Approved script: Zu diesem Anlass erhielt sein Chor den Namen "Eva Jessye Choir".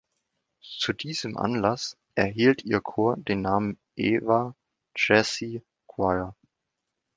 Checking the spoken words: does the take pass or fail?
fail